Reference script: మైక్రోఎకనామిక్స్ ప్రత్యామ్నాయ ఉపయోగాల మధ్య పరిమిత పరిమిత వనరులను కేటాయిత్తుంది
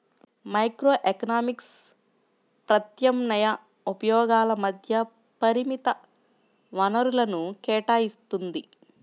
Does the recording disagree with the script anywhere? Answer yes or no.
yes